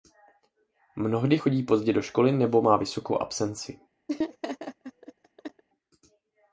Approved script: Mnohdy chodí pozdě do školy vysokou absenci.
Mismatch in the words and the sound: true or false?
true